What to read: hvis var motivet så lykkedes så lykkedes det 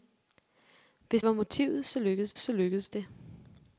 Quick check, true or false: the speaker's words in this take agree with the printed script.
true